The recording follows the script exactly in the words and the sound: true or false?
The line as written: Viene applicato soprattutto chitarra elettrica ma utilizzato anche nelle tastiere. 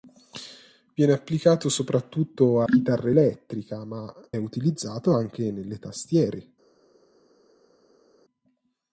true